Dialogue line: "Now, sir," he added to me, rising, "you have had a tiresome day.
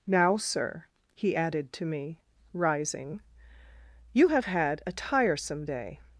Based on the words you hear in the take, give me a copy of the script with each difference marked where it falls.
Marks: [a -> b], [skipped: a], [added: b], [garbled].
"Now, sir," he added to me, rising, "you have had a tiresome day.